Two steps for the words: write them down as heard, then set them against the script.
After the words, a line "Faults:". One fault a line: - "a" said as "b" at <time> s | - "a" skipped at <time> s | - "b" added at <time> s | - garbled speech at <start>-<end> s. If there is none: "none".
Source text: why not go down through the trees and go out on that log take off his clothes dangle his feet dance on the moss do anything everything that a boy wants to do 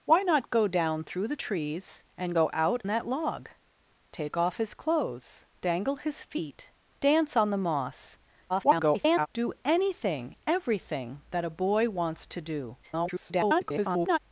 why not go down through the trees and go out that log take off his clothes dangle his feet dance on the moss [garbled] do anything everything that a boy wants to do [garbled]
Faults:
- "on" skipped at 2.8 s
- garbled speech at 8.5-9.3 s
- garbled speech at 12.8-14.2 s